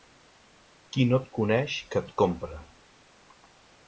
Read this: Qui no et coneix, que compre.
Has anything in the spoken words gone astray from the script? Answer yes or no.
yes